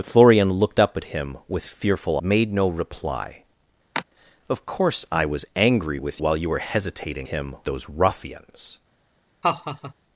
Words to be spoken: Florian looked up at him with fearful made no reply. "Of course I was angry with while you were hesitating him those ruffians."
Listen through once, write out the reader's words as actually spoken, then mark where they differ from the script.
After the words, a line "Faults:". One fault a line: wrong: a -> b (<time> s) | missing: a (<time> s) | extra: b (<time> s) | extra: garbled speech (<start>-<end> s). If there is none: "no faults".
Florian looked up at him with fearful made no reply. "Of course I was angry with while you were hesitating him those ruffians."
Faults:
no faults